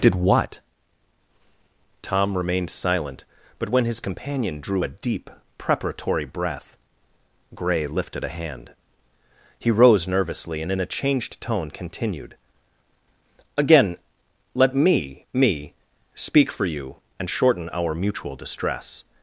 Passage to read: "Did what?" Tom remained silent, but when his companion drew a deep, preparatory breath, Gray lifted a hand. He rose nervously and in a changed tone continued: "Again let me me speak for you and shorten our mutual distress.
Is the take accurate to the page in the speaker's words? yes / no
yes